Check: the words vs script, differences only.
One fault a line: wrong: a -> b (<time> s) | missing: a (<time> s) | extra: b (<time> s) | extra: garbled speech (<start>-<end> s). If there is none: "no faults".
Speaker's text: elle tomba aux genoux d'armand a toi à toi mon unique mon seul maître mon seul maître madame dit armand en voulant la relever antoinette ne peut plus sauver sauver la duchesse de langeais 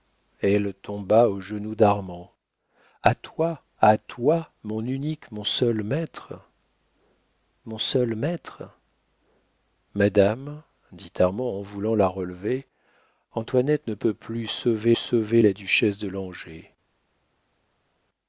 no faults